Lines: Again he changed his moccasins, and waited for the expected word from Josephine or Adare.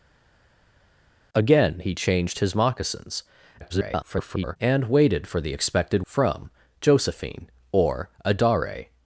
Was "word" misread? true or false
true